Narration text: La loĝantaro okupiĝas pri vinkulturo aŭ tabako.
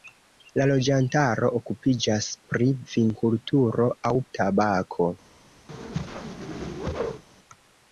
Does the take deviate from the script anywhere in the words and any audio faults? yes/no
yes